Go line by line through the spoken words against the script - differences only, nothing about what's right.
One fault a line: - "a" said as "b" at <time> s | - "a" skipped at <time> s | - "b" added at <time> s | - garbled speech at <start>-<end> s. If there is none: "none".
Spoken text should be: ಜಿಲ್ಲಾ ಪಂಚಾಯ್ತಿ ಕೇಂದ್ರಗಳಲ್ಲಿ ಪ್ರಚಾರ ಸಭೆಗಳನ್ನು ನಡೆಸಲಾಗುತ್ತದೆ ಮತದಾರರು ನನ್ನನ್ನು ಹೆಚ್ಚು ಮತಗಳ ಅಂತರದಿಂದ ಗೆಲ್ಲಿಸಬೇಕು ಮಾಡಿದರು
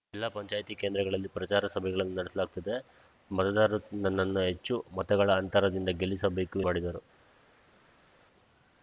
none